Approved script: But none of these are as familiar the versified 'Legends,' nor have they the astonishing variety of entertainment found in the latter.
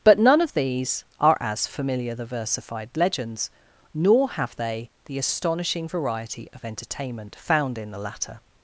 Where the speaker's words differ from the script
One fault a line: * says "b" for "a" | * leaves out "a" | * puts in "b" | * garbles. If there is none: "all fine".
all fine